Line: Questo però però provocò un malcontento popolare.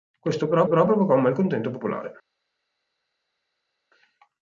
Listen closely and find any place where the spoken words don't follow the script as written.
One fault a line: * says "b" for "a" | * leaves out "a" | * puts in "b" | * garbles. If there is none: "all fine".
all fine